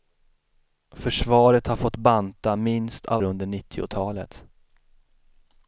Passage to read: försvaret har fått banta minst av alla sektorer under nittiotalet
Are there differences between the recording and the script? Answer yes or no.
yes